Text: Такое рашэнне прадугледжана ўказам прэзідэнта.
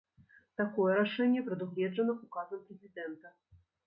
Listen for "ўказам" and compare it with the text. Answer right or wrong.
right